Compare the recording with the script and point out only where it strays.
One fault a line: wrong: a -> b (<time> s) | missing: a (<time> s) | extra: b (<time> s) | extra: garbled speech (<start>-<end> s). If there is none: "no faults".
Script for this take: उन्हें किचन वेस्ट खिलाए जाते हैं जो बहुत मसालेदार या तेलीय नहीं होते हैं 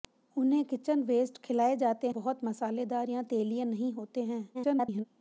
missing: हैं जो (2.1 s)
extra: garbled speech (4.5-5.0 s)